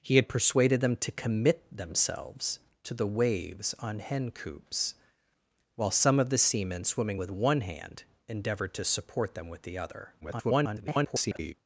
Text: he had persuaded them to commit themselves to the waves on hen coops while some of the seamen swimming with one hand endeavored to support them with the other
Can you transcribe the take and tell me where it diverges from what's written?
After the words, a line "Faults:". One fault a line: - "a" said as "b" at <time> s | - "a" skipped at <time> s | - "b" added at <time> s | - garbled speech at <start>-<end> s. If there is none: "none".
he had persuaded them to commit themselves to the waves on hen coops while some of the seamen swimming with one hand endeavored to support them with the other [garbled]
Faults:
- garbled speech at 10.2-11.5 s